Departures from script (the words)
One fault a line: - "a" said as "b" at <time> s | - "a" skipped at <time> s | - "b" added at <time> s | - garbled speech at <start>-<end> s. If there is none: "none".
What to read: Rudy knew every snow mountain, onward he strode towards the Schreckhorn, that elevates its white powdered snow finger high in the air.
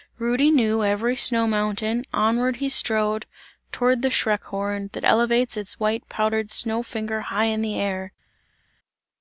none